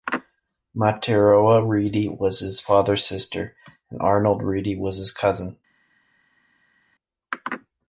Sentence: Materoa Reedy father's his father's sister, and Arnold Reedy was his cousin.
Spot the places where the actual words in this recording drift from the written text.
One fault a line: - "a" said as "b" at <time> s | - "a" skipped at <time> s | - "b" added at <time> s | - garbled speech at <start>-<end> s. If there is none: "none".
- "father's" said as "was" at 2.1 s